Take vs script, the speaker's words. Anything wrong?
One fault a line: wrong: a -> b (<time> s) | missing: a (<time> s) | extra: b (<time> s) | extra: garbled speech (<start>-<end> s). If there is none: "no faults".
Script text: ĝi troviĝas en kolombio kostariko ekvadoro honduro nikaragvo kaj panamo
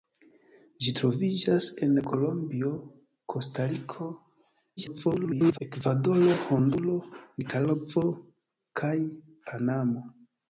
extra: garbled speech (4.8-5.6 s)